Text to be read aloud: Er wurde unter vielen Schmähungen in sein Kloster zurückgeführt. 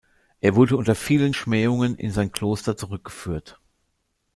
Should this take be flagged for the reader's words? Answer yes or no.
no